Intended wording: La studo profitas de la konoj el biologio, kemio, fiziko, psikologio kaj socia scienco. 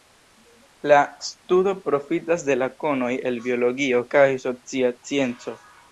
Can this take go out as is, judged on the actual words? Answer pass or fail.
fail